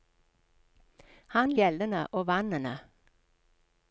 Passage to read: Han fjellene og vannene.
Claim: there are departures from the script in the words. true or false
false